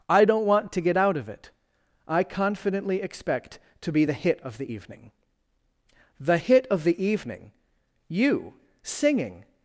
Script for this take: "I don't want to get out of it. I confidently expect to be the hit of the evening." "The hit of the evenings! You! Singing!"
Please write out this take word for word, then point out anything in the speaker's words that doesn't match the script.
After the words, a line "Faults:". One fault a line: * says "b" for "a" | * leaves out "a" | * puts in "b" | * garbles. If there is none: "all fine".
"I don't want to get out of it. I confidently expect to be the hit of the evening." "The hit of the evening! You! Singing!"
Faults:
* says "evening" for "evenings"